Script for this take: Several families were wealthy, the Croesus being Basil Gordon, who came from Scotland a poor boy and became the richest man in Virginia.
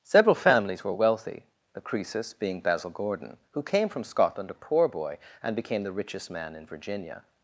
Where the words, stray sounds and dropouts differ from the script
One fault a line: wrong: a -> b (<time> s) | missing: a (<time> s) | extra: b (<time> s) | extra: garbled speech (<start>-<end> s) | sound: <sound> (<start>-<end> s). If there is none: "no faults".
no faults